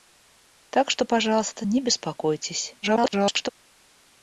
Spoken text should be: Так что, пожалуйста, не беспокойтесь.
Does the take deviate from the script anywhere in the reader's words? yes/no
yes